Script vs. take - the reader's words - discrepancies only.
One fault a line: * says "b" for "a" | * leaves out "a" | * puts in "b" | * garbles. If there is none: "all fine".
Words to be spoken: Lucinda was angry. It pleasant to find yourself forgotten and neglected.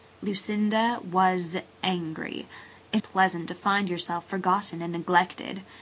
all fine